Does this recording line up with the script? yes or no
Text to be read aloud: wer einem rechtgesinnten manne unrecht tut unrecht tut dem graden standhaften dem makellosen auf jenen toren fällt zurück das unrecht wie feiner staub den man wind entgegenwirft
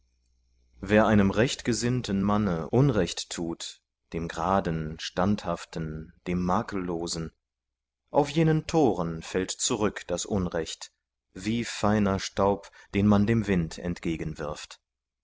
no